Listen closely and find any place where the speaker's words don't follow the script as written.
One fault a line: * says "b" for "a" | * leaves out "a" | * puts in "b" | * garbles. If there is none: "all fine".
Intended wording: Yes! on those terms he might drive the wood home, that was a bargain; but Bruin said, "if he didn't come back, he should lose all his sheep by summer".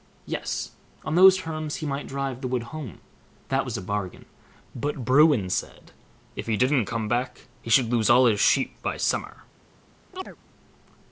all fine